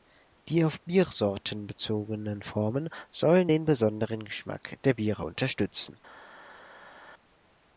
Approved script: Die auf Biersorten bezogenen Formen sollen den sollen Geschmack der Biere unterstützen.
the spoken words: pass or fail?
fail